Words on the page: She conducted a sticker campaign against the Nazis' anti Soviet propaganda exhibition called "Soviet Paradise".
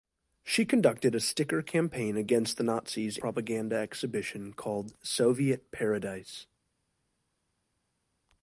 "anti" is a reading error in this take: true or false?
true